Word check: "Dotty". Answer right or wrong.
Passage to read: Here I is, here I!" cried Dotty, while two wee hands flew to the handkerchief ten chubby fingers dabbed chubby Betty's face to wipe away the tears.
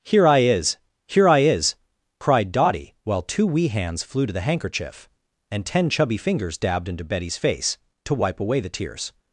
right